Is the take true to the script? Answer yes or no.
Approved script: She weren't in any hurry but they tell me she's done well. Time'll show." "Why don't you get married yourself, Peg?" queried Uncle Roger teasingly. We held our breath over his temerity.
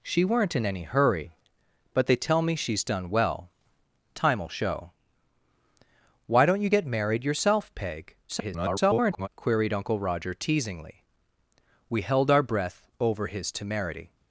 no